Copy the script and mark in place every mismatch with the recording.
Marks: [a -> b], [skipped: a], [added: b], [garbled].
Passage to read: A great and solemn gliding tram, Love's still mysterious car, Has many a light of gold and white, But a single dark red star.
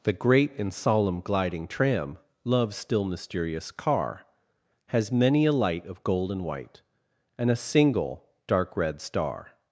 [A -> The] great and solemn gliding tram, Love's still mysterious car, Has many a light of gold and white, [But -> And] a single dark red star.